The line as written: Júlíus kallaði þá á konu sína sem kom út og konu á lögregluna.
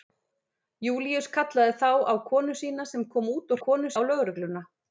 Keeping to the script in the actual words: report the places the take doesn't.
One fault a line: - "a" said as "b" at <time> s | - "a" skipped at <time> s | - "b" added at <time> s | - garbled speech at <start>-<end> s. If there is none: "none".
none